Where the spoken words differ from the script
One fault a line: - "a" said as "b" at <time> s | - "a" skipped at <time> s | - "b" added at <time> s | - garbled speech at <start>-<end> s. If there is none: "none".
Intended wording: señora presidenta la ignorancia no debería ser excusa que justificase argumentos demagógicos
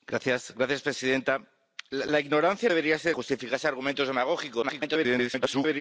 - "no" skipped at 2.7 s
- "excusa que" skipped at 3.2 s
- garbled speech at 4.6-5.8 s